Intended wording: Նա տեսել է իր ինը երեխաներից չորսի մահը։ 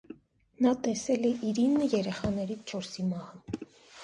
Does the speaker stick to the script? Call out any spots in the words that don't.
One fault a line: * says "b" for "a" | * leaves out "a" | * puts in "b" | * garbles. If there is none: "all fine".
all fine